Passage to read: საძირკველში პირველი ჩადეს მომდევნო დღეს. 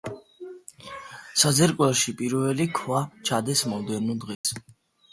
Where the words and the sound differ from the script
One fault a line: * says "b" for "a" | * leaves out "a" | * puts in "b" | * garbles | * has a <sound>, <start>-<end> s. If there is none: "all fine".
* puts in "ქვა"
* has a dropout, 4.3-4.4 s